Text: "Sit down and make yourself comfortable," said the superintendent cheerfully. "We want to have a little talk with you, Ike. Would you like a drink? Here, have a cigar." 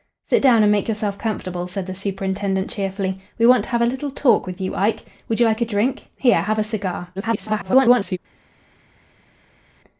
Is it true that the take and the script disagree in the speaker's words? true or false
true